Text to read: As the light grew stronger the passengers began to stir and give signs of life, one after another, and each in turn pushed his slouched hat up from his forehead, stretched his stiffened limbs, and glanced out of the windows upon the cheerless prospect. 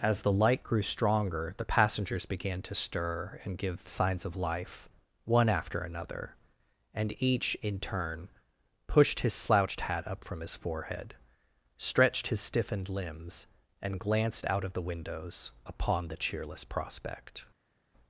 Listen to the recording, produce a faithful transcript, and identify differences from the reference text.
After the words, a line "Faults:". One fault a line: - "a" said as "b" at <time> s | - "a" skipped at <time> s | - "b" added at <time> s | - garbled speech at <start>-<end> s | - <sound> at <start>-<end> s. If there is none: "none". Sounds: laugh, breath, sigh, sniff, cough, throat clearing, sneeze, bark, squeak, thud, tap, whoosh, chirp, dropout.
As the light grew stronger the passengers began to stir and give signs of life, one after another, and each in turn pushed his slouched hat up from his forehead, stretched his stiffened limbs, and glanced out of the windows upon the cheerless prospect.
Faults:
none